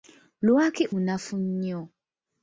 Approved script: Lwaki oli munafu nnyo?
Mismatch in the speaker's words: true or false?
true